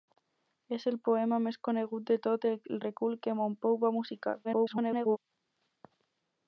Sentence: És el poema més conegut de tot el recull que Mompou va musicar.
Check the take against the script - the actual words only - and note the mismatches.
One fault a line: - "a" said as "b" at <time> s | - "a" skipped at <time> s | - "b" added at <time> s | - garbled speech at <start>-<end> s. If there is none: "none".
- garbled speech at 4.4-5.2 s